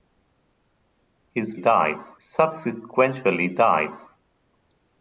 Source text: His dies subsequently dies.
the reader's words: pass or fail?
pass